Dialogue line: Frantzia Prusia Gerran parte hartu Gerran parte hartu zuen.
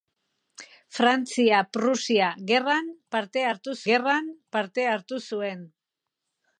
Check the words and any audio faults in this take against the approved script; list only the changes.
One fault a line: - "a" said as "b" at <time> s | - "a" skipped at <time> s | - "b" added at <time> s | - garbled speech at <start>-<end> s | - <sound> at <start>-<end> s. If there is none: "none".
none